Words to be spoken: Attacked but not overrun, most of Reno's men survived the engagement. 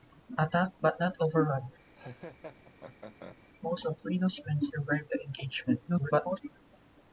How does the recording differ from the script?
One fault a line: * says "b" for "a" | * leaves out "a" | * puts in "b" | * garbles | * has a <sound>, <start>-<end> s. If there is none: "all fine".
* has a laugh, 1.9-3.4 s
* garbles